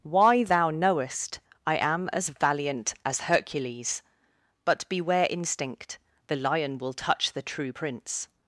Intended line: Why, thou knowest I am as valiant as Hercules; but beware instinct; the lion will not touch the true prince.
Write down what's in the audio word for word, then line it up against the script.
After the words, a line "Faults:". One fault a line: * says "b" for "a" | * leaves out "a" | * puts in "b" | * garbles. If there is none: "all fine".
Why, thou knowest I am as valiant as Hercules; but beware instinct; the lion will touch the true prince.
Faults:
* leaves out "not"